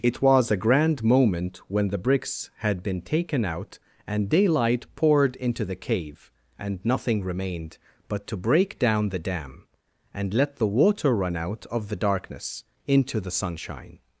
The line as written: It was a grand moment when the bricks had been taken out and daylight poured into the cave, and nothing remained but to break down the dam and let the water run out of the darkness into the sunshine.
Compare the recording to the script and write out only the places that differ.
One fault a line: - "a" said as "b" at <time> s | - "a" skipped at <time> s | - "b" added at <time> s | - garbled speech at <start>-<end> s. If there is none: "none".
none